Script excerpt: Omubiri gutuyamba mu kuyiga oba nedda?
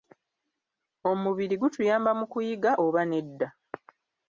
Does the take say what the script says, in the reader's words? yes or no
yes